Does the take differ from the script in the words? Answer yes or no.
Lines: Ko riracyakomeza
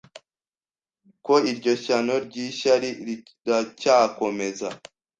yes